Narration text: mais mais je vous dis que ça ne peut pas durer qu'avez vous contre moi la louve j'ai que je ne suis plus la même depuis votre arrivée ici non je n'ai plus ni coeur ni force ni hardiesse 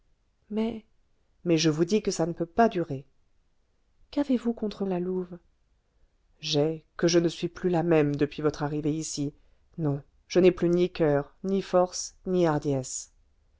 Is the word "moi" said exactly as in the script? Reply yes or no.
no